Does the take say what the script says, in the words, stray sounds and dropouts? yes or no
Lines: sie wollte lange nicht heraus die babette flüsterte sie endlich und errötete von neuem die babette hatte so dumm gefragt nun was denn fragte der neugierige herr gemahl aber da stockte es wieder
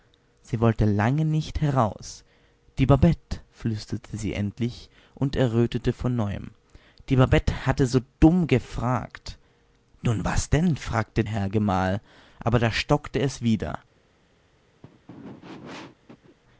no